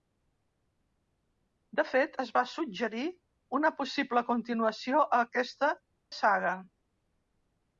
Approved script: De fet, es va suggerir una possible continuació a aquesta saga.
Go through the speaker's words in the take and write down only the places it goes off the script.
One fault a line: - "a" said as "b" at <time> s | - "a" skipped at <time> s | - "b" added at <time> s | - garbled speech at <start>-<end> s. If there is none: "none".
none